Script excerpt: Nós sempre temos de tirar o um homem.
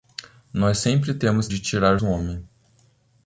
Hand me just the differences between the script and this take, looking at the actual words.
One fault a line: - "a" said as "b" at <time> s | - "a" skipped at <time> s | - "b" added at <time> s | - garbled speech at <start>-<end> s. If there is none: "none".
none